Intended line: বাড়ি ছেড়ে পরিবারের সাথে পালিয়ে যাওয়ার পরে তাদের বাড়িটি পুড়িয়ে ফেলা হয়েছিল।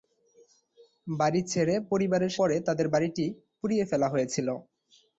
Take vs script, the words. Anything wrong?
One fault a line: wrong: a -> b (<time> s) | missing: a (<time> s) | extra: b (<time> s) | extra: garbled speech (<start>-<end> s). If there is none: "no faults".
missing: সাথে পালিয়ে যাওয়ার (2.3 s)